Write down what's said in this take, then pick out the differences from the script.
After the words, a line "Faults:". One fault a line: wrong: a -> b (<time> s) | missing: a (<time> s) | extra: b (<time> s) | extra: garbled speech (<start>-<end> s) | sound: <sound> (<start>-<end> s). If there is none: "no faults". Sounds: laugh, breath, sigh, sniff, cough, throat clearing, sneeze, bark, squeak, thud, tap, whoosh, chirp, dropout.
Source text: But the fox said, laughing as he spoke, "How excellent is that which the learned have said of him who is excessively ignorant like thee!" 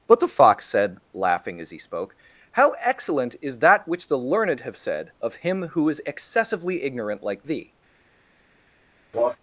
But the fox said, laughing as he spoke, "How excellent is that which the learned have said of him who is excessively ignorant like thee!"
Faults:
sound: cough (9.1-9.4 s)